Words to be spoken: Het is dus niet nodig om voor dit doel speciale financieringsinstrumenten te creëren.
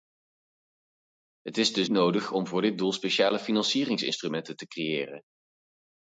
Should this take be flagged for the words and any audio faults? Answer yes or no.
yes